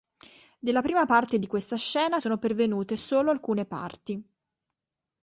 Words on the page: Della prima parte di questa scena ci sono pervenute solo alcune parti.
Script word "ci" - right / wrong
wrong